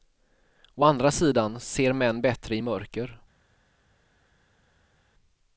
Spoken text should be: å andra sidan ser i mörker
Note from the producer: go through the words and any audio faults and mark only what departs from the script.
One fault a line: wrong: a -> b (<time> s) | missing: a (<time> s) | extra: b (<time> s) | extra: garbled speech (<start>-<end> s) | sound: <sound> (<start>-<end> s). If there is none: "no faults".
extra: män bättre (1.9 s)